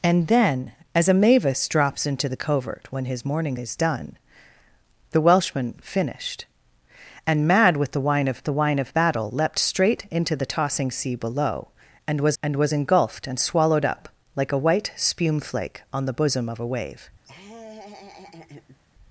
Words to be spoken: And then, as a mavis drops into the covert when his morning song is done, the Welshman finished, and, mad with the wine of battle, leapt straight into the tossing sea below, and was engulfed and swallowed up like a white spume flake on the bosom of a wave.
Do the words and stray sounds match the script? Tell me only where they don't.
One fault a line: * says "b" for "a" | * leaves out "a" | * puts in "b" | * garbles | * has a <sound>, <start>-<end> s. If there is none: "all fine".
* leaves out "song"
* puts in "the wine of"
* puts in "and was"
* has a laugh, 17.2-18.8 s